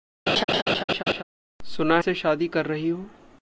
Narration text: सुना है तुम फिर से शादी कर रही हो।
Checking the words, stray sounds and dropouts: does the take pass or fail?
fail